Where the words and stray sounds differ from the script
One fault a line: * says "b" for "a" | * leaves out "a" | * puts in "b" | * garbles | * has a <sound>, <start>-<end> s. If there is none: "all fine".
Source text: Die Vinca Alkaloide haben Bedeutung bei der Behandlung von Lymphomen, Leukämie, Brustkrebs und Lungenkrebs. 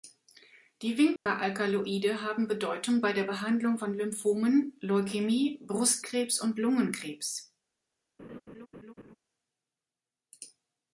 * has a dropout, 1.2-1.3 s
* has a laugh, 8.2-9.2 s